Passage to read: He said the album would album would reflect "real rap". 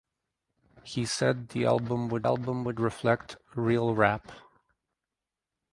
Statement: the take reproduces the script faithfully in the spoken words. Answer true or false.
true